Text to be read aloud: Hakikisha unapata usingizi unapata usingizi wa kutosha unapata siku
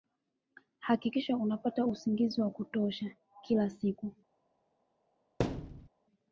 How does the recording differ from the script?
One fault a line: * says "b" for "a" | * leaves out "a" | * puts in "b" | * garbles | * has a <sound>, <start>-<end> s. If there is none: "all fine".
* leaves out "unapata usingizi"
* says "kila" for "unapata"
* has a thud, 5.4-5.9 s